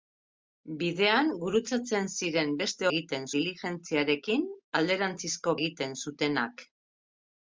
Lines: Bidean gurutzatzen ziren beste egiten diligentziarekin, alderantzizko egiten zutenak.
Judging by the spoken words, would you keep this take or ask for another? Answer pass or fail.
pass